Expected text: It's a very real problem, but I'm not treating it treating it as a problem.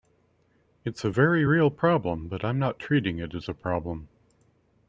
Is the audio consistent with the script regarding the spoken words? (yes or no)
no